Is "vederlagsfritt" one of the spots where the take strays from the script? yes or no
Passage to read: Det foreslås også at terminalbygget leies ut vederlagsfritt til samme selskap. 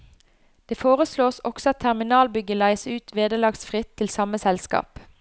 no